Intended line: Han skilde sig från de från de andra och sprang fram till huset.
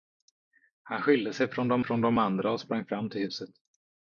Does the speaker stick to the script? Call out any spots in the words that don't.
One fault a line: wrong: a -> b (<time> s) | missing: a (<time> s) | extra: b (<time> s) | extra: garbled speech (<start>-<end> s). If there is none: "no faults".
no faults